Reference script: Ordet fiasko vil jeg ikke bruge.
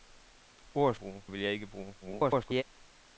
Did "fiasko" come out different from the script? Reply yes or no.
yes